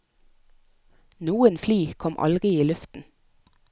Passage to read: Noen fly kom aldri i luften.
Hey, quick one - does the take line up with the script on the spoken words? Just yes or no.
yes